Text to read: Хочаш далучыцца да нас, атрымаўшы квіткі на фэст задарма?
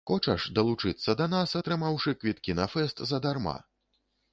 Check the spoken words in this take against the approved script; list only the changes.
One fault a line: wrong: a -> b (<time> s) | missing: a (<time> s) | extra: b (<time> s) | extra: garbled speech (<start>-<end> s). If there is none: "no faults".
no faults